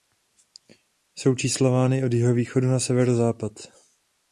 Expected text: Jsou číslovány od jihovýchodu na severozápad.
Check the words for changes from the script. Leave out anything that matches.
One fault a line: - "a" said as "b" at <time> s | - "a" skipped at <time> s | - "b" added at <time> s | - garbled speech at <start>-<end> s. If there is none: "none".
none